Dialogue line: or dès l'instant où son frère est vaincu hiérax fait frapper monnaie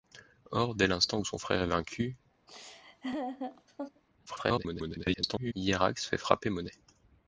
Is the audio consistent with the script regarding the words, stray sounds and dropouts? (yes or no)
no